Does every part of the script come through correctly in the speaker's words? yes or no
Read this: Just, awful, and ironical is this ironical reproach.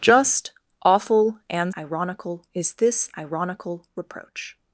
yes